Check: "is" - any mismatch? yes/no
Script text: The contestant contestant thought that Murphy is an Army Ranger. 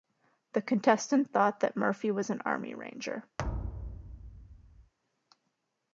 yes